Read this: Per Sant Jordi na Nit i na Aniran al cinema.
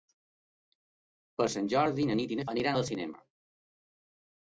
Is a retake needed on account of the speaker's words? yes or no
no